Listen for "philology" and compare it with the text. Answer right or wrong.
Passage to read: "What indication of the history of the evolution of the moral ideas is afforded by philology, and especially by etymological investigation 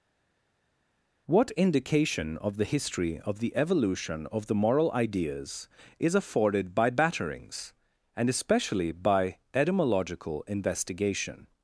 wrong